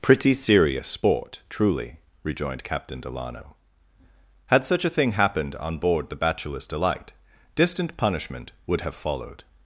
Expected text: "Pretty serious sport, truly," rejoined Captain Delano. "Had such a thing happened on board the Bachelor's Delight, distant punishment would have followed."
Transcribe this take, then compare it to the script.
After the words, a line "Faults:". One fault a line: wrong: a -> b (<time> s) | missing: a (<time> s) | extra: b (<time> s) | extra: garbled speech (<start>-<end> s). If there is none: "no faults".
"Pretty serious sport, truly," rejoined Captain Delano. "Had such a thing happened on board the Bachelor's Delight, distant punishment would have followed."
Faults:
no faults